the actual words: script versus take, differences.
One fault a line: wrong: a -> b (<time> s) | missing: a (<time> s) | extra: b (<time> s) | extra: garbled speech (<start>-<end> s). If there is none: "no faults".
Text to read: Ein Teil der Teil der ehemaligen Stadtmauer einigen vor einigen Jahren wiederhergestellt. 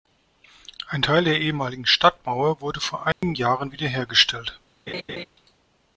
missing: Teil der (1.4 s)
wrong: einigen -> wurde (2.6 s)